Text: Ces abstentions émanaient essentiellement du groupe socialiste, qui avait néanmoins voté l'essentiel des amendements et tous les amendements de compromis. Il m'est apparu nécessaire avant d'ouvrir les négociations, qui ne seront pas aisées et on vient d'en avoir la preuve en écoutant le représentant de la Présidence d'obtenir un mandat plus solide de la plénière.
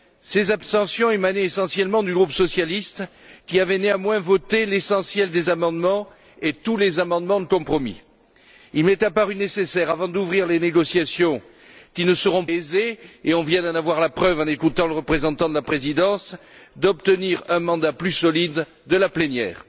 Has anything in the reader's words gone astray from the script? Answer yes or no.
yes